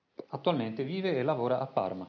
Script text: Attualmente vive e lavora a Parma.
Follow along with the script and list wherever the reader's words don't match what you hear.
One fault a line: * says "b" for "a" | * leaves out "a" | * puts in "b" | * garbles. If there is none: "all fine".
all fine